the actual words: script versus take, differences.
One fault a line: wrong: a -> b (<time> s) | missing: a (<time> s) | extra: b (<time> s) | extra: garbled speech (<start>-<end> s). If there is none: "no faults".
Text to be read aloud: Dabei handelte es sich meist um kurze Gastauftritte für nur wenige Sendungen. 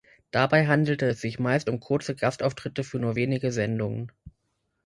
no faults